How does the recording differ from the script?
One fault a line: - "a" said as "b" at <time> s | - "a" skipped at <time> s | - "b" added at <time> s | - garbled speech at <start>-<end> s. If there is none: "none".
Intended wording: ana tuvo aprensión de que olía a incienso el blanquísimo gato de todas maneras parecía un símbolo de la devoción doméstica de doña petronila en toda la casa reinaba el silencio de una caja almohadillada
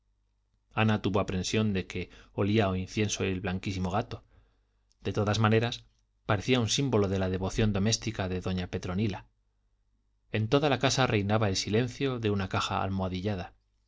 none